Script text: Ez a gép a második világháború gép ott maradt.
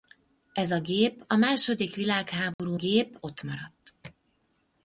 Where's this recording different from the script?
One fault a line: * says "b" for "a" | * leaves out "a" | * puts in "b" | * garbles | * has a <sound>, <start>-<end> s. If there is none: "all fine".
* has a dropout, 2.5-2.6 s